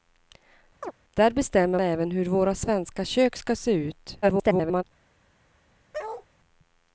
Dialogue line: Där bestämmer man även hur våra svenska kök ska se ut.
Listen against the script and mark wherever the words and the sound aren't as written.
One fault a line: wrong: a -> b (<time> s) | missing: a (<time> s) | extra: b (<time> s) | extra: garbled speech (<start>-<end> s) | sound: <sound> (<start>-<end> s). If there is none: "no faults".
sound: chirp (0.8-0.9 s)
missing: man (1.8 s)
extra: garbled speech (4.2-4.8 s)
sound: bark (5.9-6.3 s)